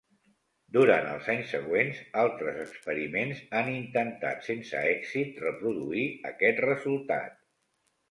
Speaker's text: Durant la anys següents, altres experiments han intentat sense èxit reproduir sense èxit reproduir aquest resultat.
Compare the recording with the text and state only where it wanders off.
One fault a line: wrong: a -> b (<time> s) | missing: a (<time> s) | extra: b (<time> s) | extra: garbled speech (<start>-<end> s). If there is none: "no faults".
wrong: la -> els (1.1 s)
missing: sense èxit reproduir (6.1 s)